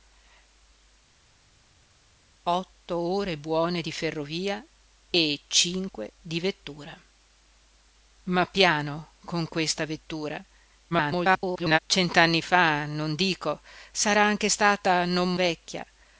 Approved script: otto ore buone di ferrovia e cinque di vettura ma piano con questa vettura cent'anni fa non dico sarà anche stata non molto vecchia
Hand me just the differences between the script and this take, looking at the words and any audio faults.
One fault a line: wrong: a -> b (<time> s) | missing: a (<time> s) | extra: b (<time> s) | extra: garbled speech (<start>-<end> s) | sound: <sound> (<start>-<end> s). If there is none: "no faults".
extra: garbled speech (10.9-11.8 s)
missing: molto (15.3 s)